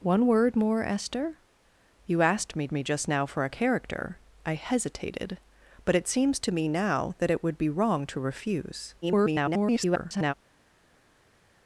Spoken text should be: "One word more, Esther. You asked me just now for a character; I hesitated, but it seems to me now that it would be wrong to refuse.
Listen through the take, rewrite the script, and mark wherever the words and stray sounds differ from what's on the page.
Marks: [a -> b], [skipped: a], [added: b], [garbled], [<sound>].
"One word more, Esther. You asked me [added: me] just now for a character; I hesitated, but it seems to me now that it would be wrong to refuse. [garbled]